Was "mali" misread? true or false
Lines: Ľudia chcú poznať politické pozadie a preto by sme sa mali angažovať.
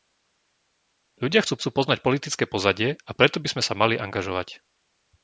false